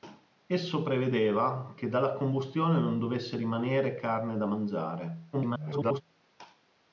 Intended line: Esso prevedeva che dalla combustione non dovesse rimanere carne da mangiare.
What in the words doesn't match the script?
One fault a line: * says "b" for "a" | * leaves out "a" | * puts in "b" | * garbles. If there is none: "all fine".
* garbles